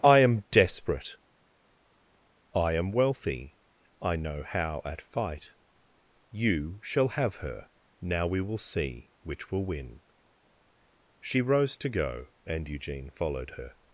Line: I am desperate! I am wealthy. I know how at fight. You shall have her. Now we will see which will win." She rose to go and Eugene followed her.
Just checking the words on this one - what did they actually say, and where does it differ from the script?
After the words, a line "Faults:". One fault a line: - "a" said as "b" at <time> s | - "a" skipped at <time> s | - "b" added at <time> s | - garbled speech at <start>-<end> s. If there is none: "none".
I am desperate! I am wealthy. I know how at fight. You shall have her. Now we will see which will win." She rose to go and Eugene followed her.
Faults:
none